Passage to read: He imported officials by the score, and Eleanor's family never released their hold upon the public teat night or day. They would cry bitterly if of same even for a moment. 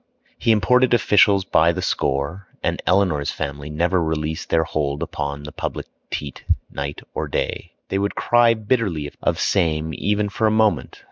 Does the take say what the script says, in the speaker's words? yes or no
yes